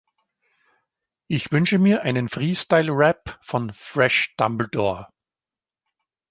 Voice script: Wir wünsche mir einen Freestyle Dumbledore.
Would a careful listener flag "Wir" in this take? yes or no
yes